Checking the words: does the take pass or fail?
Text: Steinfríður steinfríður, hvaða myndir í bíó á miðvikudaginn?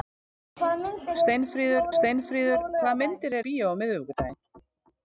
pass